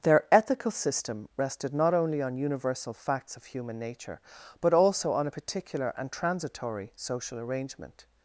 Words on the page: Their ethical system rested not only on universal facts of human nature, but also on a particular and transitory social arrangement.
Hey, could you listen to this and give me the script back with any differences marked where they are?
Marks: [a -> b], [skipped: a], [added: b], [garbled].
Their ethical system rested not only on universal facts of human nature, but also on a particular and transitory social arrangement.